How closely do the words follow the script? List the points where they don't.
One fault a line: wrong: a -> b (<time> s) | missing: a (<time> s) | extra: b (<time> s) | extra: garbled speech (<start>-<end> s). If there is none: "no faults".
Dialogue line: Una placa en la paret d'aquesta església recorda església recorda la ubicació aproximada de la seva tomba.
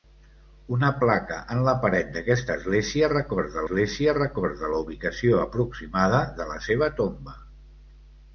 no faults